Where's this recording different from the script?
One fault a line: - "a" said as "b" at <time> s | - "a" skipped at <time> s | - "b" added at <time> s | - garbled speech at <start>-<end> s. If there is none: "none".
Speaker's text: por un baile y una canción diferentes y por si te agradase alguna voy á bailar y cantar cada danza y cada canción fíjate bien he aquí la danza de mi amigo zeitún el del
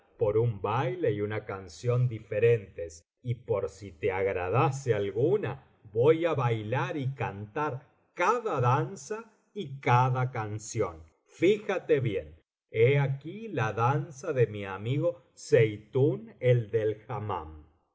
none